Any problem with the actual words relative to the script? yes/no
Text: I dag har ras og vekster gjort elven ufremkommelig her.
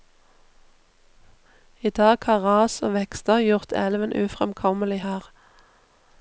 no